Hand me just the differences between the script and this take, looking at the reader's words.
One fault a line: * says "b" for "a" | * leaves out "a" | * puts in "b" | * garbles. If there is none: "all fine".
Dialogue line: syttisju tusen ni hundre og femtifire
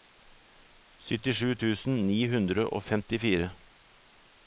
all fine